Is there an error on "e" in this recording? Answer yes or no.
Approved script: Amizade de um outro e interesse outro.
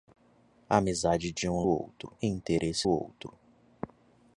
no